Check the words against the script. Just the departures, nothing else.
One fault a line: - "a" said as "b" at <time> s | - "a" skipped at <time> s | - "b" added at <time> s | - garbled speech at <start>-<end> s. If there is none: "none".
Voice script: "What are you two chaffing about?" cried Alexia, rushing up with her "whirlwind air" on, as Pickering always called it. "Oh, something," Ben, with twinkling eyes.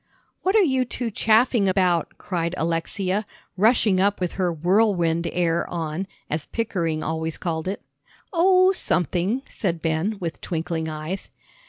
- "said" added at 9.5 s